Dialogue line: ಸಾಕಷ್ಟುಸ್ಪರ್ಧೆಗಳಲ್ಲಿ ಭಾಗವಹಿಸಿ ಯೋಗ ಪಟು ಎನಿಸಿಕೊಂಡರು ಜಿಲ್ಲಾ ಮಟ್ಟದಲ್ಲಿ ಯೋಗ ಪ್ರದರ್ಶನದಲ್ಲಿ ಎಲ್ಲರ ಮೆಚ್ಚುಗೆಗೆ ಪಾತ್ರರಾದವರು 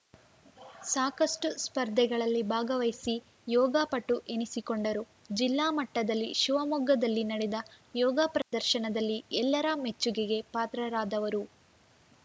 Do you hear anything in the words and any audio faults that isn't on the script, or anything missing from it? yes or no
yes